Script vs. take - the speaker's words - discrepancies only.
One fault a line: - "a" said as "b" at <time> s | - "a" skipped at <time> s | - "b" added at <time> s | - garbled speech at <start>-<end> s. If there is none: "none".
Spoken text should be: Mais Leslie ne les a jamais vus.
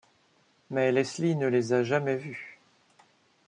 none